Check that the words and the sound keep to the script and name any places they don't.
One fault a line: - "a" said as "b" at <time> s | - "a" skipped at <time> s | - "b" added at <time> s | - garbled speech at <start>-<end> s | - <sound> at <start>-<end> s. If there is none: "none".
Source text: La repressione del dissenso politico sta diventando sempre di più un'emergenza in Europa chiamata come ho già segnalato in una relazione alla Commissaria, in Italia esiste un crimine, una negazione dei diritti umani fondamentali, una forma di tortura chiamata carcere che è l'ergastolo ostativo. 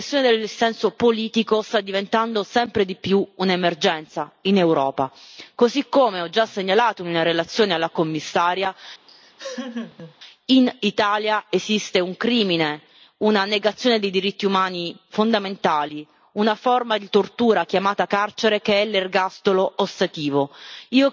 - "chiamata" said as "così" at 5.5 s
- laugh at 9.1-10.1 s